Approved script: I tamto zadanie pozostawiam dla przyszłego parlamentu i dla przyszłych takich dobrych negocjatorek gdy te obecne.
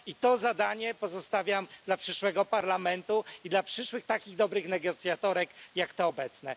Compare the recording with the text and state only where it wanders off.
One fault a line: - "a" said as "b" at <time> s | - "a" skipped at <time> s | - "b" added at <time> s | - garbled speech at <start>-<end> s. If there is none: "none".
- "tamto" said as "to" at 0.1 s
- "gdy" said as "jak" at 5.8 s